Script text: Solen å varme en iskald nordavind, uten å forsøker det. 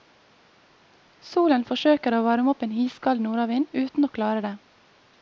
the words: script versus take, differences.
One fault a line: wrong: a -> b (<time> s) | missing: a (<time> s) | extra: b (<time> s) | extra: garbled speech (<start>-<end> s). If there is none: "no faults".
extra: forsøker (1.7 s)
extra: opp (2.5 s)
wrong: forsøker -> klare (4.1 s)